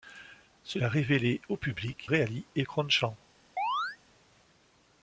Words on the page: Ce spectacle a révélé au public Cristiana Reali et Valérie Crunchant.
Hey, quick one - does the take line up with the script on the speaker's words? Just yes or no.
no